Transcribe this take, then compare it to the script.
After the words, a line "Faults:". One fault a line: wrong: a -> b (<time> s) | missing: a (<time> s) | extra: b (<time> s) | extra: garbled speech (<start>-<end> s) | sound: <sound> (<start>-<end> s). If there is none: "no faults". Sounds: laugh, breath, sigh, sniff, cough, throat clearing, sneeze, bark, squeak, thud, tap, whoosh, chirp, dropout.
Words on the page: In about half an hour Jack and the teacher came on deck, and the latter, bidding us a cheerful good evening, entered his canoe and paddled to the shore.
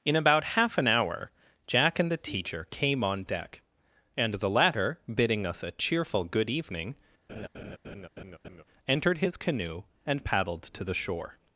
In about half an hour Jack and the teacher came on deck, and the latter, bidding us a cheerful good evening, entered his canoe and paddled to the shore.
Faults:
sound: laugh (7.3-8.6 s)